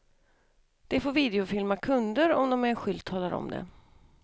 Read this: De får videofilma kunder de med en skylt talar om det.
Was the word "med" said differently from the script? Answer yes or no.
no